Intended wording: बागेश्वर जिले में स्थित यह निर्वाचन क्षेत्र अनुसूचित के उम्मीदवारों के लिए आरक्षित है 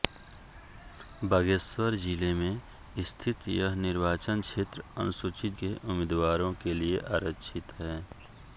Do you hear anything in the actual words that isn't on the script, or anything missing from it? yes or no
no